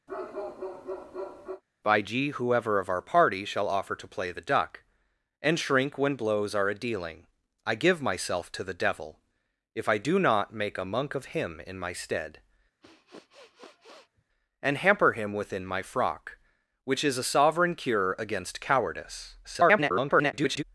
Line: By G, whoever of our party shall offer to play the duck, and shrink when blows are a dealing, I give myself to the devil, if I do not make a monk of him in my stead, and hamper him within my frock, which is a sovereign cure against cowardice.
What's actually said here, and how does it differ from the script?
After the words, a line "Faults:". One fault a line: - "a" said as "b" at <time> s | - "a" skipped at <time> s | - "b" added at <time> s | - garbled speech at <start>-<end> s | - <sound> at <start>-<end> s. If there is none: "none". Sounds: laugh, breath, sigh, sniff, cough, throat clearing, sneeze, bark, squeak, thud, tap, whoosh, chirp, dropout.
By G, whoever of our party shall offer to play the duck, and shrink when blows are a dealing, I give myself to the devil, if I do not make a monk of him in my stead, and hamper him within my frock, which is a sovereign cure against cowardice. [garbled]
Faults:
- bark at 0.1-1.6 s
- sniff at 12.8-14.2 s
- garbled speech at 19.4-20.6 s